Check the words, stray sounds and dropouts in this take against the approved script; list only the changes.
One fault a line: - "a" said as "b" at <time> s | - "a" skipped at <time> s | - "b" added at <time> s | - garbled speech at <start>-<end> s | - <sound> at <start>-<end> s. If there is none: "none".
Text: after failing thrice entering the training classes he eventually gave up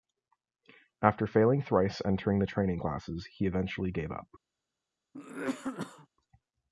- cough at 5.1-6.1 s